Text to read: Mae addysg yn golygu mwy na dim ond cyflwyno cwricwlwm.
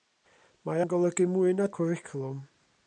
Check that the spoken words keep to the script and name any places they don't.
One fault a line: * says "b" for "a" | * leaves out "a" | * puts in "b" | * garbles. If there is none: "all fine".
* leaves out "addysg"
* leaves out "dim ond cyflwyno"